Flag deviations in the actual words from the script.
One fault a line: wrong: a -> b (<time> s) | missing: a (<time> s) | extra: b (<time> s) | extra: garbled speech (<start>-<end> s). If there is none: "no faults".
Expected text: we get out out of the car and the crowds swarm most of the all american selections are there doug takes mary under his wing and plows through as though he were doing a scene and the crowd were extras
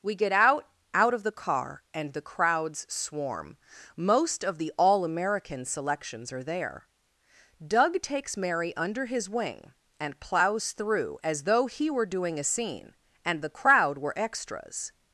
no faults